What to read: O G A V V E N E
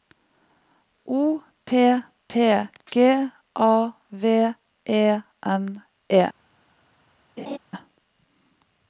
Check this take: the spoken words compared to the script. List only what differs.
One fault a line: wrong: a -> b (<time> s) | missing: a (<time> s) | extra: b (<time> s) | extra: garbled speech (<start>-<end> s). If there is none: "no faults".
extra: P P (1.6 s)
missing: V (4.5 s)